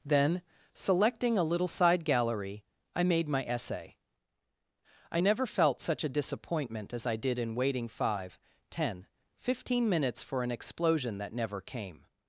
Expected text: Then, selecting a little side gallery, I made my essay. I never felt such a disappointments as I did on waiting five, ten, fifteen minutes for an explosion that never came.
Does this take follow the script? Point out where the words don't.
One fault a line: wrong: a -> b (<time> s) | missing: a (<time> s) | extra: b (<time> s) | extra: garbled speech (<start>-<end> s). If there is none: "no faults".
wrong: disappointments -> disappointment (6.1 s)
wrong: on -> in (7.4 s)